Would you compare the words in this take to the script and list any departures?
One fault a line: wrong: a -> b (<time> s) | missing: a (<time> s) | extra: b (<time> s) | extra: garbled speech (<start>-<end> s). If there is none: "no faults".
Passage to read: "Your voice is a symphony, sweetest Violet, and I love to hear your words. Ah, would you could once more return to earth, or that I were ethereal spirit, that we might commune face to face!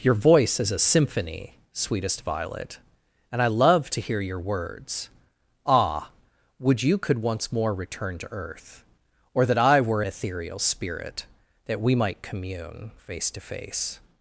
no faults